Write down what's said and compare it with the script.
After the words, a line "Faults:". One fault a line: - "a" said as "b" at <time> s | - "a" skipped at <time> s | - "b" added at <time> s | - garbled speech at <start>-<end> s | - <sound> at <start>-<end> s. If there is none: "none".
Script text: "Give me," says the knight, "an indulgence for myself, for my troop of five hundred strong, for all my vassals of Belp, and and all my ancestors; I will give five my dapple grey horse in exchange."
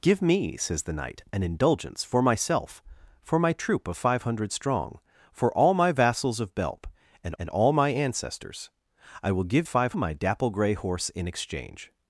"Give me," says the knight, "an indulgence for myself, for my troop of five hundred strong, for all my vassals of Belp, and and all my ancestors; I will give five my dapple grey horse in exchange."
Faults:
none